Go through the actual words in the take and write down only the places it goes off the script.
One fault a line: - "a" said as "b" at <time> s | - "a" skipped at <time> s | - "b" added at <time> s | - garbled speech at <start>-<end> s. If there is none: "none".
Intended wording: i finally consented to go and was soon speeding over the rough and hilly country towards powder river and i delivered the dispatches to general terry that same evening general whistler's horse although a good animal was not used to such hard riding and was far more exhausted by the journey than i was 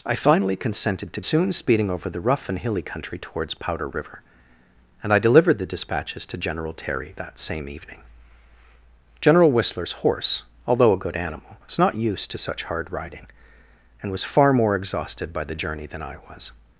- "go and was" skipped at 1.2 s